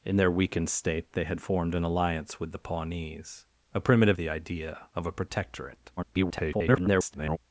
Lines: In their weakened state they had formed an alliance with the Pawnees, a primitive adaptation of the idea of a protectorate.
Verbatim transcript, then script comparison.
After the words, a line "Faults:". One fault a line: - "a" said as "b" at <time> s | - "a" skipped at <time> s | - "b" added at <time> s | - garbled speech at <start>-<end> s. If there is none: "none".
In their weakened state they had formed an alliance with the Pawnees, a primitive the idea of a protectorate. [garbled]
Faults:
- "adaptation of" skipped at 4.2 s
- garbled speech at 6.0-7.4 s